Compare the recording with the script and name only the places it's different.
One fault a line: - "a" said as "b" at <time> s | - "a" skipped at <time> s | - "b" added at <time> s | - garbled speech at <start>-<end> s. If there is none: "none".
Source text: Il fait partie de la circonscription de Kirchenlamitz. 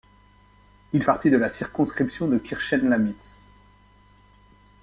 - "fait" skipped at 1.0 s